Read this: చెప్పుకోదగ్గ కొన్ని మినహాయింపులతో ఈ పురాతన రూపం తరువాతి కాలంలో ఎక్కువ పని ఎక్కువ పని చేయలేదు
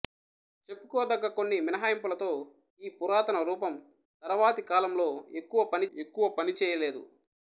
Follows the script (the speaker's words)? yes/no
yes